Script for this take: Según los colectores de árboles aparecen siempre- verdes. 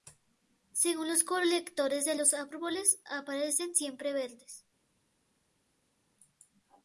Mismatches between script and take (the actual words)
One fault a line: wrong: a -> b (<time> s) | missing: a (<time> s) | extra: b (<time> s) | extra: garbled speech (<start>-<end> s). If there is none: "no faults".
extra: los (2.1 s)